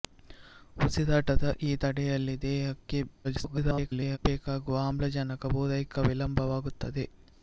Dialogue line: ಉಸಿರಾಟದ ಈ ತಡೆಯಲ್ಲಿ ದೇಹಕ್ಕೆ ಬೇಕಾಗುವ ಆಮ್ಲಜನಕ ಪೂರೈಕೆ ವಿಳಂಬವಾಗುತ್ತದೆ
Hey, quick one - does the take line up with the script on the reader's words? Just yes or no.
no